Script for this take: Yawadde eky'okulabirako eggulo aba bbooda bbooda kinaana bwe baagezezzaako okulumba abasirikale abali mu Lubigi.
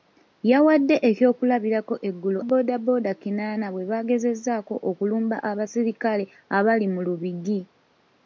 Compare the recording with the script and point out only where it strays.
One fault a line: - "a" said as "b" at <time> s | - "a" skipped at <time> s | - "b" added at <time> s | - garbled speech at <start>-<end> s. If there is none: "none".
- "aba" skipped at 2.4 s